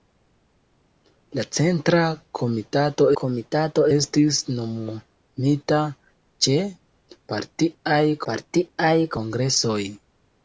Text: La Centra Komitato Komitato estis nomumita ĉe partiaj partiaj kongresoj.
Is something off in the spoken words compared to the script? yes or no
no